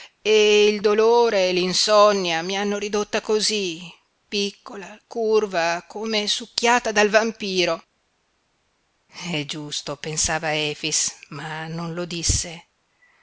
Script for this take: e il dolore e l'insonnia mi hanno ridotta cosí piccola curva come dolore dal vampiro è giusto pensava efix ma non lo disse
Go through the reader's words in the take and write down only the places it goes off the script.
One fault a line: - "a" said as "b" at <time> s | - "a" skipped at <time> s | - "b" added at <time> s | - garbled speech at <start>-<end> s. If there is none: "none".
- "dolore" said as "succhiata" at 6.3 s